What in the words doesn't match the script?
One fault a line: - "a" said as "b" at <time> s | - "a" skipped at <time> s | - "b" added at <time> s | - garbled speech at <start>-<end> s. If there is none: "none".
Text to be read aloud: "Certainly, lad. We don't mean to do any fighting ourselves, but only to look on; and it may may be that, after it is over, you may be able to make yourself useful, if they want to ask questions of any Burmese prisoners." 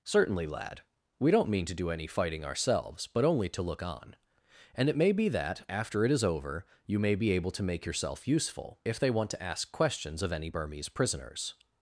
- "may" skipped at 5.1 s